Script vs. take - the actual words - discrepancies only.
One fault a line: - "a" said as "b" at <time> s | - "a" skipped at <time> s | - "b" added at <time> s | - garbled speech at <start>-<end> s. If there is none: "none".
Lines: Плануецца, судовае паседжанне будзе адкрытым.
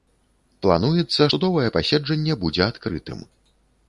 none